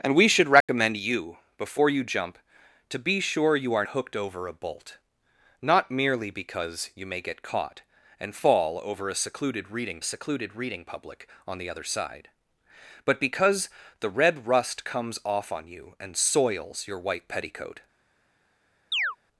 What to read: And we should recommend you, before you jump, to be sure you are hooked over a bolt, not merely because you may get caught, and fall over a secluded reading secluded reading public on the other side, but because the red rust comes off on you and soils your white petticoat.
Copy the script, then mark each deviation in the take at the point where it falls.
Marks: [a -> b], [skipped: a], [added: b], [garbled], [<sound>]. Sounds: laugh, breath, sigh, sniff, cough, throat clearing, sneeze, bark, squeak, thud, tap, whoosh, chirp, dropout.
And we should recommend [dropout] you, before you jump, to be sure you are hooked over a bolt, not merely because you may get caught, and fall over a secluded reading secluded reading public on the other side, but because the red rust comes off on you and soils your white petticoat. [chirp]